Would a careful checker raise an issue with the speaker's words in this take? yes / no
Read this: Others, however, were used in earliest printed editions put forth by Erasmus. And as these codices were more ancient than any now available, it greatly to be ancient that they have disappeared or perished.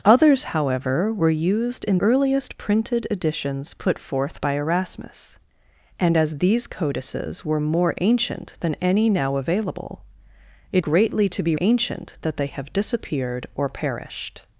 no